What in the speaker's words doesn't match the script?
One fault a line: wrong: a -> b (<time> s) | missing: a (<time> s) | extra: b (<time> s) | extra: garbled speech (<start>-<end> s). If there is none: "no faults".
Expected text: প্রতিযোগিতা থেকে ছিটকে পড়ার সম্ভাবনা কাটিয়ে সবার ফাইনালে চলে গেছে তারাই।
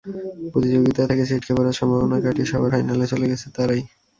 no faults